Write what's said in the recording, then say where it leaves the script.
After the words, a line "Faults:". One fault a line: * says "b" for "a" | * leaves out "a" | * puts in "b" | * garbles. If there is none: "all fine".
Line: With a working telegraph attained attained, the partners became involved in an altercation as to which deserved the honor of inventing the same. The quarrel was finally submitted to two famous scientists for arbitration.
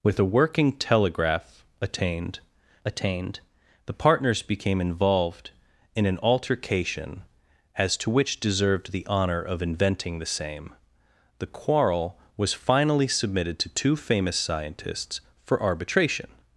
With a working telegraph attained attained, the partners became involved in an altercation as to which deserved the honor of inventing the same. The quarrel was finally submitted to two famous scientists for arbitration.
Faults:
all fine